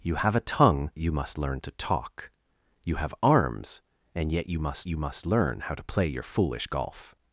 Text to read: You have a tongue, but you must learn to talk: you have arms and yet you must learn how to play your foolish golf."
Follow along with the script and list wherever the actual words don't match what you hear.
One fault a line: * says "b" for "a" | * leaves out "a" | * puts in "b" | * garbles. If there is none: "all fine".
* leaves out "but"
* puts in "you must"